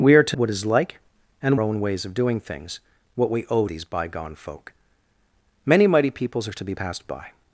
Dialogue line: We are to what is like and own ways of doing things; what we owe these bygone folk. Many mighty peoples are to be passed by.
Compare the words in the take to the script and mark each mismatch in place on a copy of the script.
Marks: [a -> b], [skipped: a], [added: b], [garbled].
We are to what is like and own ways of doing things; what we owe these bygone folk. Many mighty peoples are to be passed by.